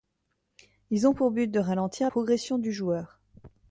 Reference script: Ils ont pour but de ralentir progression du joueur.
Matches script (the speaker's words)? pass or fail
pass